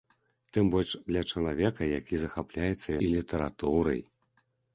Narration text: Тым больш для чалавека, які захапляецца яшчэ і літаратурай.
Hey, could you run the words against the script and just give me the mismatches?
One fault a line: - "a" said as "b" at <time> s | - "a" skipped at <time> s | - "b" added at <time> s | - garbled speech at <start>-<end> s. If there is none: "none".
- "яшчэ" skipped at 3.0 s